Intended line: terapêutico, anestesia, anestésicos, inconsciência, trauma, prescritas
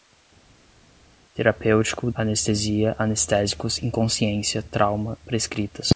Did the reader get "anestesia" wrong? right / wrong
right